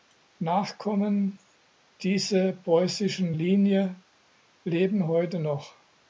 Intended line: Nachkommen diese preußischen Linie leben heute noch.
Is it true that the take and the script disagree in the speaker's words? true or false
false